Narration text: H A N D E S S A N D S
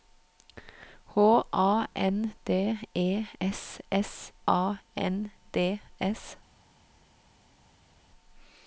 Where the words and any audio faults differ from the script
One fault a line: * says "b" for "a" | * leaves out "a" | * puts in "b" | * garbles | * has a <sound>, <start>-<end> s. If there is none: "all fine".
all fine